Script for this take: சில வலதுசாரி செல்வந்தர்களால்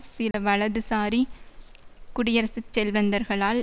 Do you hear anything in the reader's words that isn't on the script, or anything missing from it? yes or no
yes